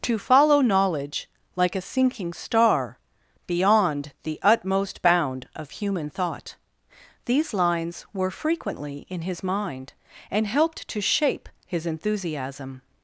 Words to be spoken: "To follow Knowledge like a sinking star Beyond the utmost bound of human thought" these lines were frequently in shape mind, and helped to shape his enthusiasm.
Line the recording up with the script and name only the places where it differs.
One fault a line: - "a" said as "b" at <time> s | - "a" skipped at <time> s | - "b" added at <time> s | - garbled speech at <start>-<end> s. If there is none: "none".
- "shape" said as "his" at 9.2 s